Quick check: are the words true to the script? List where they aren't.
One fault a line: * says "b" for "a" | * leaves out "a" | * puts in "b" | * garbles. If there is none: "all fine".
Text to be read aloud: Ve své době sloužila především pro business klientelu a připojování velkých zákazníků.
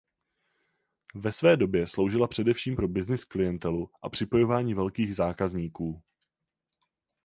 all fine